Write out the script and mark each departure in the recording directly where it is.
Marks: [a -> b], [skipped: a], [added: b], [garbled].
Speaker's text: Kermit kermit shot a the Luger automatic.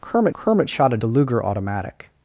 Kermit kermit shot a the Luger automatic.